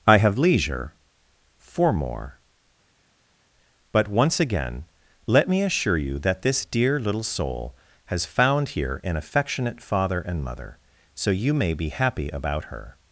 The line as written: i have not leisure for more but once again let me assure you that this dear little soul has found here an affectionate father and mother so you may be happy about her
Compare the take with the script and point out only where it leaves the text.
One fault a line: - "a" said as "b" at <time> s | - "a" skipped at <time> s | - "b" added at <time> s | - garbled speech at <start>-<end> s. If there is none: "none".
- "not" skipped at 0.4 s